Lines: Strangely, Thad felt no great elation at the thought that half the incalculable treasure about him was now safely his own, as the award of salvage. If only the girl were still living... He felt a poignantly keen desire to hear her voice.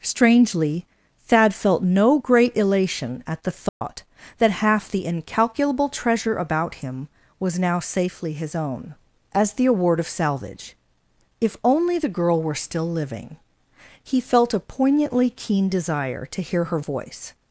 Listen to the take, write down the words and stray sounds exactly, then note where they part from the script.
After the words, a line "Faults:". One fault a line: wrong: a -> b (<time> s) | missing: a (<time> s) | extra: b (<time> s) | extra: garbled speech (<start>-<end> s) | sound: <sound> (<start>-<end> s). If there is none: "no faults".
Strangely, Thad felt no great elation at the thought that half the incalculable treasure about him was now safely his own, as the award of salvage. If only the girl were still living... He felt a poignantly keen desire to hear her voice.
Faults:
sound: dropout (3.7-3.8 s)